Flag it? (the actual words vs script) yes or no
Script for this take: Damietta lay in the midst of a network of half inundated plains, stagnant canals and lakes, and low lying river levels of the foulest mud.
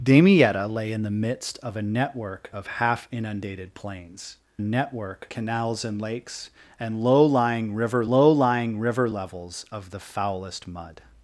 yes